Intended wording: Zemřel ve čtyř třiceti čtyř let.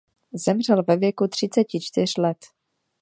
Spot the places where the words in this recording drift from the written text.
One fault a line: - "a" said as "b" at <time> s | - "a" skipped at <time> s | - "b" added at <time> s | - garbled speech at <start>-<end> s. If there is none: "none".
- "čtyř" said as "věku" at 1.0 s